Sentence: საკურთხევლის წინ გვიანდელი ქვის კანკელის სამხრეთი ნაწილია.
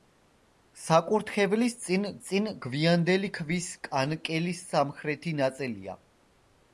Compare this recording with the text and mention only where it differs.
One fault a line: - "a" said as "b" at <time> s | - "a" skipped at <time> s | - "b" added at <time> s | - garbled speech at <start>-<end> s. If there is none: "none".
- "წინ" added at 2.3 s